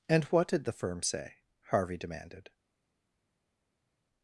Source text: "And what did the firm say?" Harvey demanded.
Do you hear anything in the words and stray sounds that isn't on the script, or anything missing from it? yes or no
no